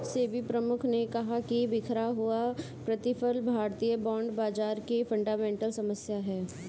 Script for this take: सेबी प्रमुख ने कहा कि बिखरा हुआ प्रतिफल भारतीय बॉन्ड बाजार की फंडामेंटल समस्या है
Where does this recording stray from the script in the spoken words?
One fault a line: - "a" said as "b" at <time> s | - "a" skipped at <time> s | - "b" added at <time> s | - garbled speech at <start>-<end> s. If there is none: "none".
none